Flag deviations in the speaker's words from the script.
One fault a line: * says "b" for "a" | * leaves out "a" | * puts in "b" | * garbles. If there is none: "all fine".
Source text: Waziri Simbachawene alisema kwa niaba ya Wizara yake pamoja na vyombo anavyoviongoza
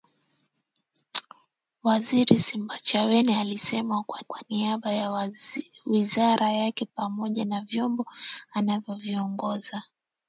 * puts in "kwa"